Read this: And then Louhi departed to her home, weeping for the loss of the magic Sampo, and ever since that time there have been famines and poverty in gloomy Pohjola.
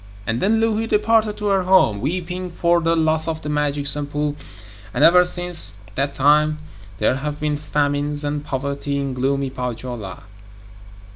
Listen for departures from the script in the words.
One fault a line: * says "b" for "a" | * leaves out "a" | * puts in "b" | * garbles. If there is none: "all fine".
all fine